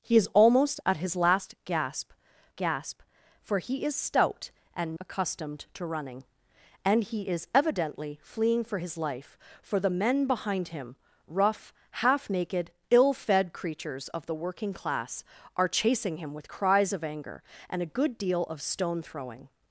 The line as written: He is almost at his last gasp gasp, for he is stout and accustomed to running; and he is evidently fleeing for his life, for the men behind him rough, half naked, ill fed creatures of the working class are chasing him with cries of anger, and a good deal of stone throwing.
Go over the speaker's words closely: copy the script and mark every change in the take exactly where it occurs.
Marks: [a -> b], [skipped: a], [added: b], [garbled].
He is almost at his last gasp gasp, for he is stout and accustomed to running; and he is evidently fleeing for his life, for the men behind him rough, half naked, ill fed creatures of the working class are chasing him with cries of anger, and a good deal of stone throwing.